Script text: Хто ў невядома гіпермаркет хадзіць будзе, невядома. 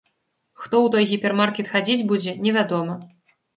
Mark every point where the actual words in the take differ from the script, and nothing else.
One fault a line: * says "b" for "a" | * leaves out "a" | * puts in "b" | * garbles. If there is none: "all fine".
* says "той" for "невядома"